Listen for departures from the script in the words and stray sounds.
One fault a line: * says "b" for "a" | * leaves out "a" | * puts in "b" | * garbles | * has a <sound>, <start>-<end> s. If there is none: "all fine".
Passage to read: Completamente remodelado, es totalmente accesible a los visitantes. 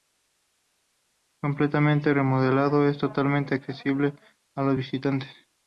all fine